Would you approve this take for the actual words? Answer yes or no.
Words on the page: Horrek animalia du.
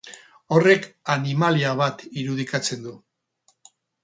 no